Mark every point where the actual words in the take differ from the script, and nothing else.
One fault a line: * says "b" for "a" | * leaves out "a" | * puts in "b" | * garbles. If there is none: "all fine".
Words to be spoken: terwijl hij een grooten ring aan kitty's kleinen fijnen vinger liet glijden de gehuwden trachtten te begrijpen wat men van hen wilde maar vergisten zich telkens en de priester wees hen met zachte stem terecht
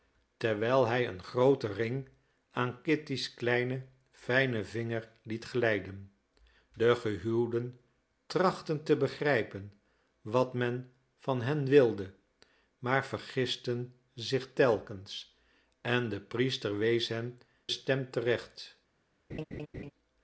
* leaves out "met zachte"